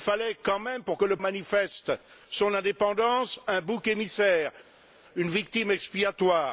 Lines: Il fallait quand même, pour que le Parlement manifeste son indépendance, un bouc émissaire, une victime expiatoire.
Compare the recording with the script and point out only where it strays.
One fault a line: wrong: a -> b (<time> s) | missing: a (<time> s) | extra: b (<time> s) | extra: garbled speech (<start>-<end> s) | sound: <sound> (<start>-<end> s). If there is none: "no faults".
missing: Parlement (1.2 s)